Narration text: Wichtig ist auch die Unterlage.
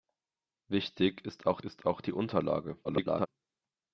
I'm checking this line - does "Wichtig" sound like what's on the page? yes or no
yes